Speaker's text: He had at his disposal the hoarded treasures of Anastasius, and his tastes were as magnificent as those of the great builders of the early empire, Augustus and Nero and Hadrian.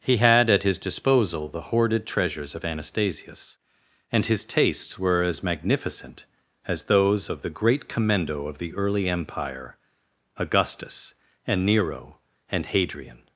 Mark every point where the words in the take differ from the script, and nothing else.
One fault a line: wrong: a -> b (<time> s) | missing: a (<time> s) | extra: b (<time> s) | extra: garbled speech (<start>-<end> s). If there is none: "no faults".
wrong: builders -> commendo (7.9 s)